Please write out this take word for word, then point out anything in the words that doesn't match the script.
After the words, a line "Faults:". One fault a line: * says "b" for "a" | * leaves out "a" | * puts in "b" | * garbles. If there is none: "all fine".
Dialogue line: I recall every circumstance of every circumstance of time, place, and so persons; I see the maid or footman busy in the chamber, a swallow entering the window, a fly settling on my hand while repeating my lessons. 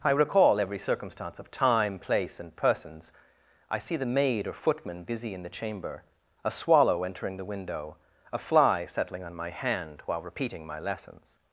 I recall every circumstance of time, place, and persons; I see the maid or footman busy in the chamber, a swallow entering the window, a fly settling on my hand while repeating my lessons.
Faults:
* leaves out "every circumstance of"
* leaves out "so"